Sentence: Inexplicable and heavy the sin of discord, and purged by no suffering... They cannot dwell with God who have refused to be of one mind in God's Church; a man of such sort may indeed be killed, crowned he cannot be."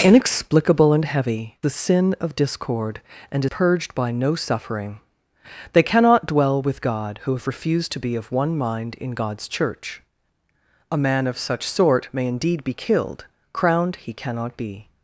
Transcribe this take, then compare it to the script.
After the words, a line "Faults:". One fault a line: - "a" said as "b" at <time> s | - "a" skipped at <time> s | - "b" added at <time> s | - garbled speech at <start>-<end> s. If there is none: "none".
Inexplicable and heavy the sin of discord, and purged by no suffering... They cannot dwell with God who have refused to be of one mind in God's Church; a man of such sort may indeed be killed, crowned he cannot be."
Faults:
none